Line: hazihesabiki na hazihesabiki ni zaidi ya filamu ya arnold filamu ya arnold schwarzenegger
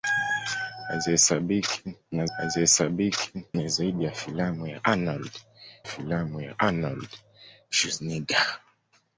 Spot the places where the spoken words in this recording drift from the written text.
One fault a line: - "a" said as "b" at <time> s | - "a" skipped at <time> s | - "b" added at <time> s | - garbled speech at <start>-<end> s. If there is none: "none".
none